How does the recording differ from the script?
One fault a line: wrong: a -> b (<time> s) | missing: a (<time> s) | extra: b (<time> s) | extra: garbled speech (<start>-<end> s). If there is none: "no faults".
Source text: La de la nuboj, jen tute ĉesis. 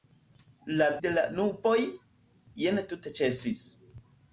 no faults